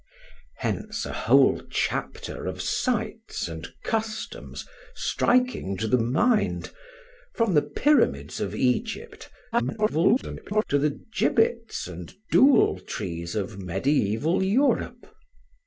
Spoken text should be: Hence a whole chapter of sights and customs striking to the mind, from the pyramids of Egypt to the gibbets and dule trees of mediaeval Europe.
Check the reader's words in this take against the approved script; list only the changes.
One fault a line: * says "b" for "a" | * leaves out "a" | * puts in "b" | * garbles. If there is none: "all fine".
* garbles